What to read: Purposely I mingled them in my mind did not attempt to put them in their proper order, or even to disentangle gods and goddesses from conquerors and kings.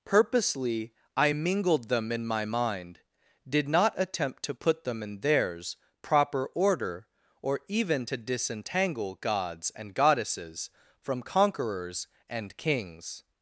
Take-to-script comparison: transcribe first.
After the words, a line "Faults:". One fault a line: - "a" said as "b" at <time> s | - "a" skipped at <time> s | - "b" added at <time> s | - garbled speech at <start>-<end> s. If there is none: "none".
Purposely I mingled them in my mind did not attempt to put them in theirs proper order, or even to disentangle gods and goddesses from conquerors and kings.
Faults:
- "their" said as "theirs" at 5.2 s